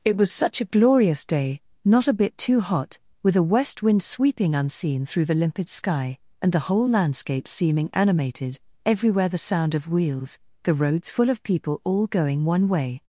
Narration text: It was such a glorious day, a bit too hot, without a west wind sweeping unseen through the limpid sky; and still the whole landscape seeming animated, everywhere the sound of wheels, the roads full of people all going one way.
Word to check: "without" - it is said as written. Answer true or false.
false